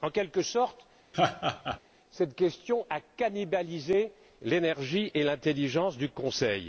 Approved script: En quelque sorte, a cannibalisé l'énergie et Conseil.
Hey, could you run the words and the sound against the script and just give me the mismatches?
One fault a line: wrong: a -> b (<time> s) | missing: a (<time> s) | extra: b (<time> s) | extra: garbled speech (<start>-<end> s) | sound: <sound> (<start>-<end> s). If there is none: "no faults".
sound: laugh (1.1-1.8 s)
extra: cette question (2.1 s)
extra: l'intelligence du (5.2 s)